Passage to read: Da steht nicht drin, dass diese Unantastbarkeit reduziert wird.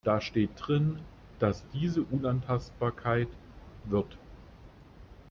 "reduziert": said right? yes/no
no